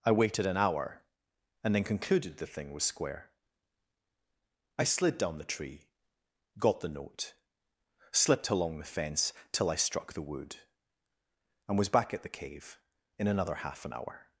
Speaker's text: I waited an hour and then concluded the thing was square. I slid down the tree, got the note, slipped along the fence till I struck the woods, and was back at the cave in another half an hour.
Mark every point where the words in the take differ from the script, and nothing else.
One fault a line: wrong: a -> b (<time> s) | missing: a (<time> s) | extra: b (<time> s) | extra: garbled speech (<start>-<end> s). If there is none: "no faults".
wrong: woods -> wood (10.2 s)